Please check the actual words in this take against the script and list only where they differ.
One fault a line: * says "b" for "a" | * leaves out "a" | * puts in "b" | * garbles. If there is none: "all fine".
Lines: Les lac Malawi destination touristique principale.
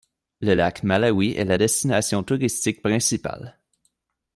* says "Le" for "Les"
* puts in "est la"